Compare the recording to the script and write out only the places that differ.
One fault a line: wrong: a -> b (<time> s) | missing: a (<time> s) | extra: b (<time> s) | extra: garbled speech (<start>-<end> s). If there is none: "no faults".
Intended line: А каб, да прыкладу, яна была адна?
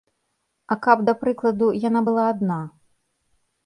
no faults